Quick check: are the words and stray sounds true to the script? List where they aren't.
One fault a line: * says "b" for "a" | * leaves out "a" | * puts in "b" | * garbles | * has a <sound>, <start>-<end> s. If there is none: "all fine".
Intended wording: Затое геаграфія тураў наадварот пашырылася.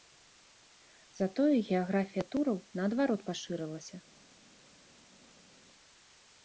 all fine